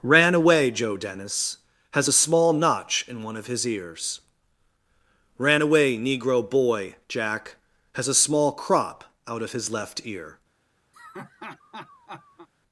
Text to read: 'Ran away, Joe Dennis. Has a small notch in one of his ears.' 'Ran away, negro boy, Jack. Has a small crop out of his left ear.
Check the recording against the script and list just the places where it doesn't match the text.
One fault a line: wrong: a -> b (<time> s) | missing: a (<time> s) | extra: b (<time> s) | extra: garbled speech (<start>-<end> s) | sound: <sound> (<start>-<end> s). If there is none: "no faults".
sound: laugh (10.9-12.5 s)